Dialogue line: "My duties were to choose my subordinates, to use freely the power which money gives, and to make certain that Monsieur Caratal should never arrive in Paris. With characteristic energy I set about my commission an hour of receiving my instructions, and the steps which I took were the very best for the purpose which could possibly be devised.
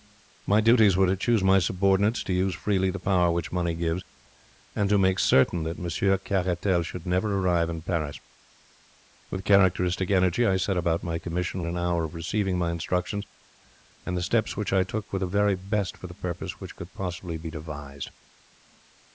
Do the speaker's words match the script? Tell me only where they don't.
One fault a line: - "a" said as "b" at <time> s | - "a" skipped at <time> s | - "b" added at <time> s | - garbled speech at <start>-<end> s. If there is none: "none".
none